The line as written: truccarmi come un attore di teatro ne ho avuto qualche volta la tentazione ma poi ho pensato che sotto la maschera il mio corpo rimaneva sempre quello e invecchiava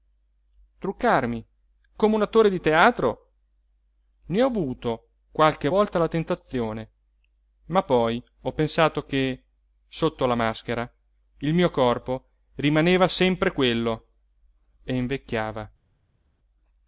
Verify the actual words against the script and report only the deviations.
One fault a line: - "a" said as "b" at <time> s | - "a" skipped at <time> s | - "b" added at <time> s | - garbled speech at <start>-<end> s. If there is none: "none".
none